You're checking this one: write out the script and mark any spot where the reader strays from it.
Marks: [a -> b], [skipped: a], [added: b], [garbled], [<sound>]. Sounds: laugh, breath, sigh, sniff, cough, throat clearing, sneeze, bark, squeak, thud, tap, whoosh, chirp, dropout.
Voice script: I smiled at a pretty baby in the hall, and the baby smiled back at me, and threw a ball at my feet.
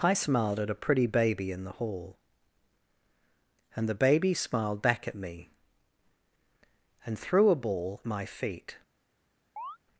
I smiled at a pretty baby in the hall, and the baby smiled back at me, and threw a ball [skipped: at] my feet. [chirp]